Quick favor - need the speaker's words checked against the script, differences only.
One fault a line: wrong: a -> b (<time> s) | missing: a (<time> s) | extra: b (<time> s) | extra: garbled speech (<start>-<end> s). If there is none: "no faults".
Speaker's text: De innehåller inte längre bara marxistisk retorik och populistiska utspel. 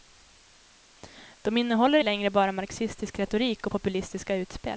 missing: inte (2.0 s)